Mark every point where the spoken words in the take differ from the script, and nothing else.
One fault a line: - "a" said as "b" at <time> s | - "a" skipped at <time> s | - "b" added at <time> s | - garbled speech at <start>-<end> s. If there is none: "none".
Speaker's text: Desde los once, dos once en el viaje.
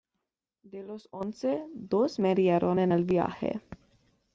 - "Desde" said as "De" at 0.6 s
- "once" said as "murieron" at 2.2 s